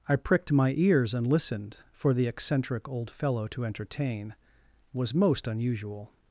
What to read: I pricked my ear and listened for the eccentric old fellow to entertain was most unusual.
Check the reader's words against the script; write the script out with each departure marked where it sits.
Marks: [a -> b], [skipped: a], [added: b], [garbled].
I pricked my [ear -> ears] and listened for the eccentric old fellow to entertain was most unusual.